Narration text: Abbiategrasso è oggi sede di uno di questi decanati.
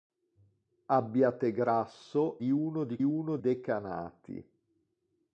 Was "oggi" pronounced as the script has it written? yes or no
no